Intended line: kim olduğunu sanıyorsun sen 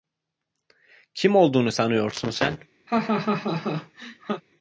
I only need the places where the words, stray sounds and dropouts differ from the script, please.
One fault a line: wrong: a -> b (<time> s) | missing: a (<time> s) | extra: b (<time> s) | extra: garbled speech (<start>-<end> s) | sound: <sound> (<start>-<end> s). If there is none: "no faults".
sound: laugh (2.9-4.4 s)